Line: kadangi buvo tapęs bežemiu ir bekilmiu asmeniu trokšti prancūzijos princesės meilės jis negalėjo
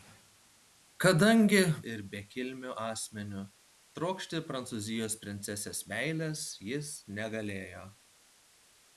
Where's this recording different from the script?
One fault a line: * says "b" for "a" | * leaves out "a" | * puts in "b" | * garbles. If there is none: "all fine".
* leaves out "buvo tapęs bežemiu"